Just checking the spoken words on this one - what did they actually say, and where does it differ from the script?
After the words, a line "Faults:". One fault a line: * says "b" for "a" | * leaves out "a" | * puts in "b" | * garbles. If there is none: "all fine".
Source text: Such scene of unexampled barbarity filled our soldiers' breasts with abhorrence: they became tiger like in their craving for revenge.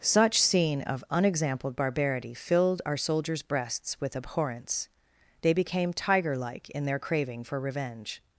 Such scene of unexampled barbarity filled our soldiers' breasts with abhorrence: they became tiger like in their craving for revenge.
Faults:
all fine